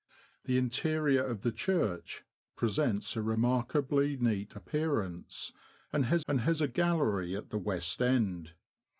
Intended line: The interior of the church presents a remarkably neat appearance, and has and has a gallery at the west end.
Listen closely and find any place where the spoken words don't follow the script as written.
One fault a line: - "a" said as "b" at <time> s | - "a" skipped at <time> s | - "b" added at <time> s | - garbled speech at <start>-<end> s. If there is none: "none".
none